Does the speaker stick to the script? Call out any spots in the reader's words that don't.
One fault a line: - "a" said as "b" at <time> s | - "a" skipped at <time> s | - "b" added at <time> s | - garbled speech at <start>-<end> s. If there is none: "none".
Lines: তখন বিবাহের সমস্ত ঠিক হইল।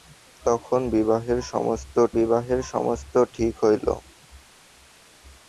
- "বিবাহের সমস্ত" added at 2.2 s